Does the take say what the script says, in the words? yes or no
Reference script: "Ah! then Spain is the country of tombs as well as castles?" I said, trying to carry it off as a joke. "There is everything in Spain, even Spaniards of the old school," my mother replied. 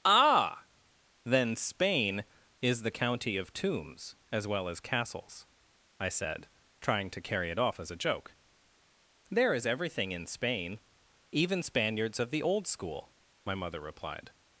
no